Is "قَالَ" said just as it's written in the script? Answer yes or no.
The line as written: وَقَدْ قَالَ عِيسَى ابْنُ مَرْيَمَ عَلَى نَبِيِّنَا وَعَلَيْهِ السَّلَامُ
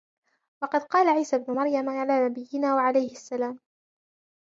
yes